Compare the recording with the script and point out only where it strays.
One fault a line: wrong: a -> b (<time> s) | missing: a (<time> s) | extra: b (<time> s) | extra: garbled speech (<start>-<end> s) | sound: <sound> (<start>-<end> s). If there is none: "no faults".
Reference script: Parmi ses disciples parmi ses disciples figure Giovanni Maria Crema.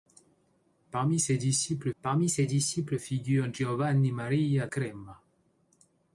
no faults